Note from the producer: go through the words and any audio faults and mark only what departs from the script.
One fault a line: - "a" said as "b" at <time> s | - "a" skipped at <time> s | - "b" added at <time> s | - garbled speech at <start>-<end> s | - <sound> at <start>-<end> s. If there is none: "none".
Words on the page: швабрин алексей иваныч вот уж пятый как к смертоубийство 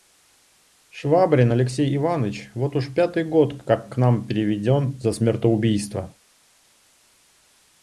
- "год" added at 3.3 s
- "нам переведен за" added at 4.0 s